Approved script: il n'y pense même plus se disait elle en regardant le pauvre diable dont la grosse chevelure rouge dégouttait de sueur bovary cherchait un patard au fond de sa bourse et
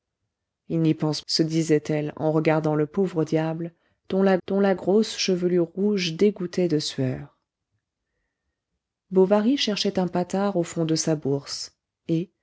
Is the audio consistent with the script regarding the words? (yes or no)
no